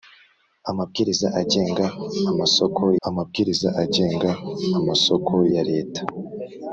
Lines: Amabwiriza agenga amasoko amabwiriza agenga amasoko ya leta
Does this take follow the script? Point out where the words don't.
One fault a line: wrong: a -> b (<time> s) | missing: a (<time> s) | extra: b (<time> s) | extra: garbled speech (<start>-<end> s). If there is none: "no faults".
no faults